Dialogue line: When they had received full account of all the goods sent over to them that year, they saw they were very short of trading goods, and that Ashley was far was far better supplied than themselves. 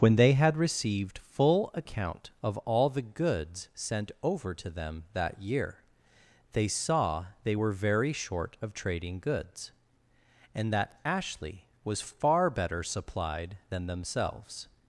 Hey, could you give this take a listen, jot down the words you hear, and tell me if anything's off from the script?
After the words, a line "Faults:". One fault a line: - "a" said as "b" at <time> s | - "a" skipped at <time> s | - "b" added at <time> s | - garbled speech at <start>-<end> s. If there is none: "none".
When they had received full account of all the goods sent over to them that year, they saw they were very short of trading goods, and that Ashley was far better supplied than themselves.
Faults:
- "was far" skipped at 12.5 s